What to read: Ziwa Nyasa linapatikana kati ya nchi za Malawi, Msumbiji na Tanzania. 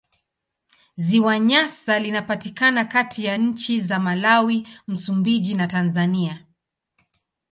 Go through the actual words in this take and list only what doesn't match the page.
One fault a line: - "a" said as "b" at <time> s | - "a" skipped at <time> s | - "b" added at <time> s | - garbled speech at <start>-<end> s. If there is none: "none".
none